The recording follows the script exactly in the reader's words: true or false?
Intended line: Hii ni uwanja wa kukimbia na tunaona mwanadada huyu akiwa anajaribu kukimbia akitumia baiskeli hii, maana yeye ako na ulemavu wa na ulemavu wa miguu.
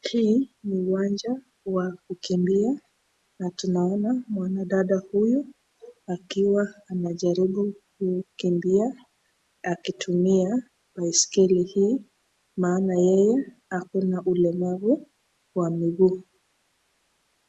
false